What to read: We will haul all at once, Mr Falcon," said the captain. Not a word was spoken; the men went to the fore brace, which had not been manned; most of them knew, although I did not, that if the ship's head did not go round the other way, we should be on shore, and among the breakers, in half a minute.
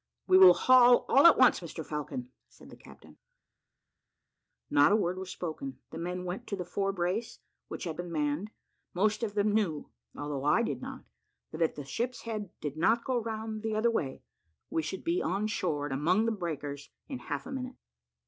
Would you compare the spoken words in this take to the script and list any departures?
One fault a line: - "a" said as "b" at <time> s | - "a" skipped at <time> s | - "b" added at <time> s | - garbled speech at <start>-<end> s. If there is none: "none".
- "not" skipped at 8.0 s